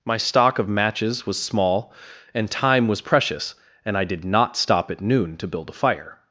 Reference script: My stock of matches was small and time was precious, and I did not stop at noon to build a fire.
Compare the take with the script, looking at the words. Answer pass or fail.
pass